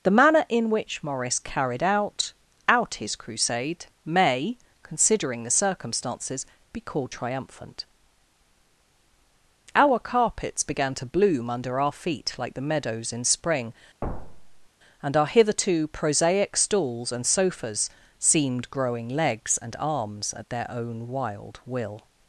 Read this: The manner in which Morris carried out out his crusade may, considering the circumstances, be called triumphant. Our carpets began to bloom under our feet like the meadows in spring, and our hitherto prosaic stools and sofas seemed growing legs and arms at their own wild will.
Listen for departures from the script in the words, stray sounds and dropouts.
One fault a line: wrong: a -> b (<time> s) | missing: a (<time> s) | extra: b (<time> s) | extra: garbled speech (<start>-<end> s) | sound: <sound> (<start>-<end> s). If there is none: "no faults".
sound: thud (14.0-14.7 s)